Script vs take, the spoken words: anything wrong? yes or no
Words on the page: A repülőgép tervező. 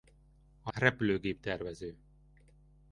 no